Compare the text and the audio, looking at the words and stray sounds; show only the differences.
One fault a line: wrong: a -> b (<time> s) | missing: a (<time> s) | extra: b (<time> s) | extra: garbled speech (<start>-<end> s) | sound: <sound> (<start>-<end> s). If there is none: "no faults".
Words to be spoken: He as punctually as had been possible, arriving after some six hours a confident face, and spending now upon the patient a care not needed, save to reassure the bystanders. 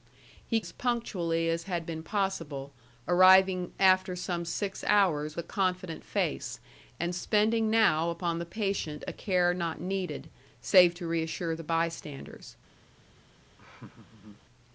sound: laugh (13.6-14.5 s)